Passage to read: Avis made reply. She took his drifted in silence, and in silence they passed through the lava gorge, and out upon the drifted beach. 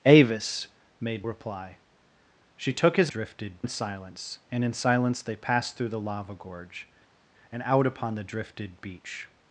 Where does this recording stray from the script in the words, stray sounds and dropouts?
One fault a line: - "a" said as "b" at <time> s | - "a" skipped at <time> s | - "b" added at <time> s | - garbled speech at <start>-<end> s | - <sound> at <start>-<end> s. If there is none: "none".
none